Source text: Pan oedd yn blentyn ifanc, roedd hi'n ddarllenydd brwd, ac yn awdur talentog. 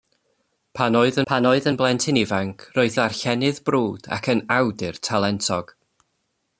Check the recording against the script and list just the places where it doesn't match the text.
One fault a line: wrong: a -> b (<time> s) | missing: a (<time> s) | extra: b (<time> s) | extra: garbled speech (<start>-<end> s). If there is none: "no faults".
extra: pan oedd (1.3 s)
missing: hi'n (3.0 s)